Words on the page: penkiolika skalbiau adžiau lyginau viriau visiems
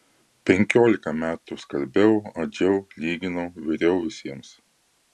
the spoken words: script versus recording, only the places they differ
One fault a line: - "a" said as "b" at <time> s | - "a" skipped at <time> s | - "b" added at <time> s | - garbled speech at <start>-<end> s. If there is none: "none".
- "metų" added at 1.2 s